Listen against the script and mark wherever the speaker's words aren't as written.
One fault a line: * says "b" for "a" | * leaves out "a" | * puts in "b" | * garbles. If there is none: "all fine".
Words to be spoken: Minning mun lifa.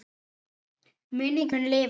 all fine